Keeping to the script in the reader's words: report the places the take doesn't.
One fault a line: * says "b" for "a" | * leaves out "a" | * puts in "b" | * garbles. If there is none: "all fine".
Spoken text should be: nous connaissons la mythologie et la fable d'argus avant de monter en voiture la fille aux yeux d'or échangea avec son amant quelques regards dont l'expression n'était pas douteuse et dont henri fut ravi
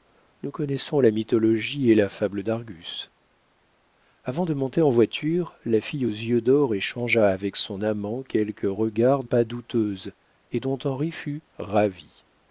* leaves out "dont l'expression n'était"